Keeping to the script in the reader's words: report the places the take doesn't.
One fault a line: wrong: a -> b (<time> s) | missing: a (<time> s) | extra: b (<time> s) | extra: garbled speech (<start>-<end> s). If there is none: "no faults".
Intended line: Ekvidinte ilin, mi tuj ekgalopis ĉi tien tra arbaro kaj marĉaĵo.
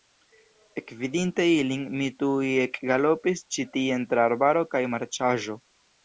no faults